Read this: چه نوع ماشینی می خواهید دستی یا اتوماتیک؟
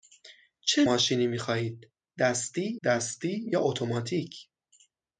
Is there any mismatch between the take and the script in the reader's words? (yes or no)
yes